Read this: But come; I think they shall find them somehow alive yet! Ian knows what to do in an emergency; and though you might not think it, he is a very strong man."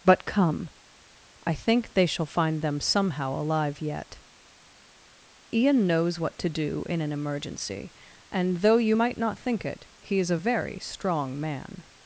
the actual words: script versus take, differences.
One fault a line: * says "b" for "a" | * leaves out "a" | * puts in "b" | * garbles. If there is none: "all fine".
all fine